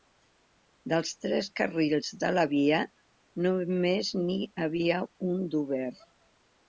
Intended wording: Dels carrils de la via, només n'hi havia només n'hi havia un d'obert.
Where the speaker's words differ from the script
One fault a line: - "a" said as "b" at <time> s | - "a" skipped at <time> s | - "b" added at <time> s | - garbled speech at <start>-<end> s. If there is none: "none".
- "tres" added at 1.2 s
- "només n'hi havia" skipped at 5.0 s